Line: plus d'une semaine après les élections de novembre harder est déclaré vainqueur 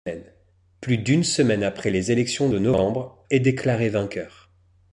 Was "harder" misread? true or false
true